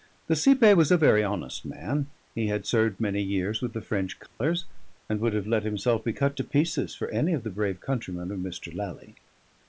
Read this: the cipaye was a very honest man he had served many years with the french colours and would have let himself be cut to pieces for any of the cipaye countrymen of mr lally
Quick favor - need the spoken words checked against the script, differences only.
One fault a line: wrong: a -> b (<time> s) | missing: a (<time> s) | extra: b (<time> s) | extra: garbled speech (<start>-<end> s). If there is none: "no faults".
wrong: cipaye -> brave (7.5 s)